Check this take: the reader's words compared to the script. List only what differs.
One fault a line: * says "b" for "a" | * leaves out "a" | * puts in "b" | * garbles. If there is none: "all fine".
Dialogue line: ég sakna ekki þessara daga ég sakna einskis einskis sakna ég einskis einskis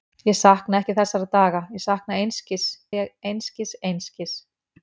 * leaves out "einskis sakna"